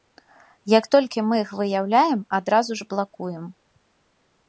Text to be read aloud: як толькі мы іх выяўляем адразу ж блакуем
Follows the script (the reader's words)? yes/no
yes